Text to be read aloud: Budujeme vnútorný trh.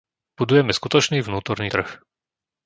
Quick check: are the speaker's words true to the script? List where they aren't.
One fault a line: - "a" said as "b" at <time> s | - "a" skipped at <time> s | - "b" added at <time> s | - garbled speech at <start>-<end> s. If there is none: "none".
- "skutočný" added at 0.7 s